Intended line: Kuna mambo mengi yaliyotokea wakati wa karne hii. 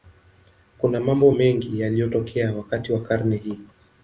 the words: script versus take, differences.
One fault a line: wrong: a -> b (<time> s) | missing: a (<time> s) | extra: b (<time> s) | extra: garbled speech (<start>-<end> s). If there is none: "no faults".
no faults